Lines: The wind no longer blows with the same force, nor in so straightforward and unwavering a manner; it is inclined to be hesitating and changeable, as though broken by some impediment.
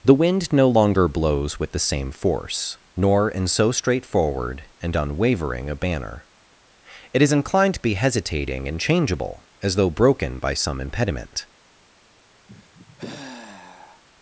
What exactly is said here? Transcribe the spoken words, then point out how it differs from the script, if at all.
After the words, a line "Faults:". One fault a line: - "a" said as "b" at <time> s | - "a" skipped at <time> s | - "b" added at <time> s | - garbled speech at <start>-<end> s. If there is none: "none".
The wind no longer blows with the same force, nor in so straightforward and unwavering a banner; it is inclined to be hesitating and changeable, as though broken by some impediment.
Faults:
- "manner" said as "banner" at 5.7 s